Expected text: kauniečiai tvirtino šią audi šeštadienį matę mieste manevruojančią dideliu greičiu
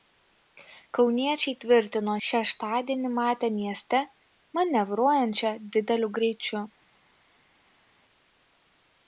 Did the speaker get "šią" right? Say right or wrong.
wrong